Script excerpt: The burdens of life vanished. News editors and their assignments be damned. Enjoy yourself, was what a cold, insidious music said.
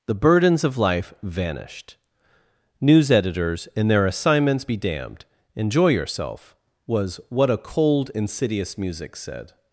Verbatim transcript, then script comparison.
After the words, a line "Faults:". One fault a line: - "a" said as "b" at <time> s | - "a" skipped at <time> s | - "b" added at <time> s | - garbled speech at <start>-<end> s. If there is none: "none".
The burdens of life vanished. News editors and their assignments be damned. Enjoy yourself, was what a cold, insidious music said.
Faults:
none